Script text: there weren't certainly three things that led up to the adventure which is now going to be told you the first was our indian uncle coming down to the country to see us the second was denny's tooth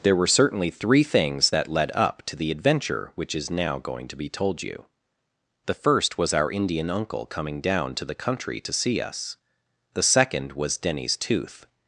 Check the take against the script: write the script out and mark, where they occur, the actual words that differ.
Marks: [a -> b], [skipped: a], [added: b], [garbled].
there [weren't -> were] certainly three things that led up to the adventure which is now going to be told you the first was our indian uncle coming down to the country to see us the second was denny's tooth